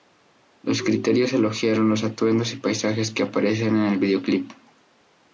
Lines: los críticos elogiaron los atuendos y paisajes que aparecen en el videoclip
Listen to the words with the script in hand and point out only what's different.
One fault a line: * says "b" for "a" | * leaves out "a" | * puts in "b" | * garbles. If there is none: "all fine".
all fine